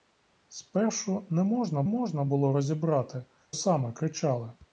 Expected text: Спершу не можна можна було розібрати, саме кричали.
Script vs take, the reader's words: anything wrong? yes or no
no